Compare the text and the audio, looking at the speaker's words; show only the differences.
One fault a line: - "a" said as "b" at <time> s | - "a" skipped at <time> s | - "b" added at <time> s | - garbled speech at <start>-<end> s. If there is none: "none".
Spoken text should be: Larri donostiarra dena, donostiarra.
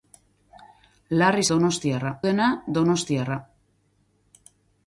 none